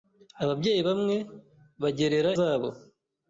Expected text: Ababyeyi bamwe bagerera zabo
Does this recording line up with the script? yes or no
yes